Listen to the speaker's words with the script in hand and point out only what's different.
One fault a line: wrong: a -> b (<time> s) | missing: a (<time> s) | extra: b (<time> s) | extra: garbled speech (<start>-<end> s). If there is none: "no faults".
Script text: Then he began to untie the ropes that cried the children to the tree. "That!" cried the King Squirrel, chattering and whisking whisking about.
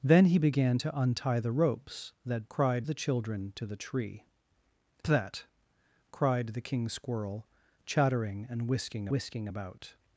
no faults